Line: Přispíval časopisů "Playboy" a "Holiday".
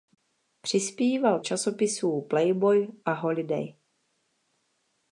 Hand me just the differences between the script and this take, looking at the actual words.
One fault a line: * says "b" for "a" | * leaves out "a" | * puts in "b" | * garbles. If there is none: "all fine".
all fine